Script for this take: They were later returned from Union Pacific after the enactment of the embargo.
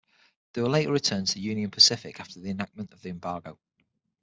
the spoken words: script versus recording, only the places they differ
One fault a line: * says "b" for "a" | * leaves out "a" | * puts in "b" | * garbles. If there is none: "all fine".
* says "to" for "from"